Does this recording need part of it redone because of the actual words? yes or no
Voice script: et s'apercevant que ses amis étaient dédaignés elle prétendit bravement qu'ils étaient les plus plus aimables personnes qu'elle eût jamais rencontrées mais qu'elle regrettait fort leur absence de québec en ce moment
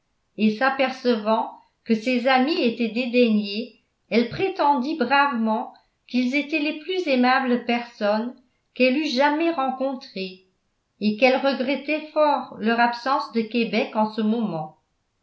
yes